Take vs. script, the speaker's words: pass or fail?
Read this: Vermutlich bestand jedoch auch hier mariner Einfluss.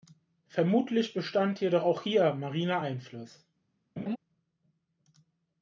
pass